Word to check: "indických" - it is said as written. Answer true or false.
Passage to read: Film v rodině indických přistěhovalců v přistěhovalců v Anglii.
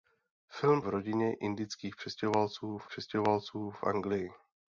true